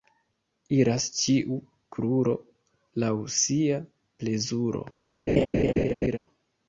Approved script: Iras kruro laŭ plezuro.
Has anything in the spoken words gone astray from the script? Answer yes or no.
yes